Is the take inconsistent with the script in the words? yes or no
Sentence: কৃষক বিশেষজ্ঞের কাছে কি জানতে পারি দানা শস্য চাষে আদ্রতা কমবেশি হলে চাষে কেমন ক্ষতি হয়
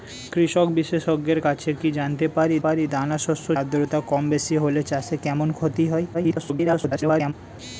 yes